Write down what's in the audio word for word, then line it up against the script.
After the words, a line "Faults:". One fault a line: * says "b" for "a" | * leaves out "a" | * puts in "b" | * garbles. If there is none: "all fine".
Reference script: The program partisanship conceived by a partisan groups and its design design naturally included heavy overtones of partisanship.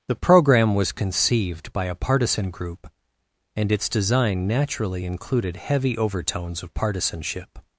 The program was conceived by a partisan group and its design naturally included heavy overtones of partisanship.
Faults:
* says "was" for "partisanship"
* says "group" for "groups"
* leaves out "design"